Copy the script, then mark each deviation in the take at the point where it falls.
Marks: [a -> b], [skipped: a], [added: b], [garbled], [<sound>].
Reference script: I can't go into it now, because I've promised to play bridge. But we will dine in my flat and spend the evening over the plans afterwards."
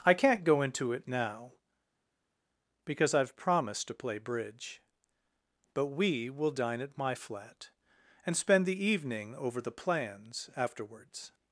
I can't go into it now, because I've promised to play bridge. But we will dine [in -> at] my flat and spend the evening over the plans afterwards."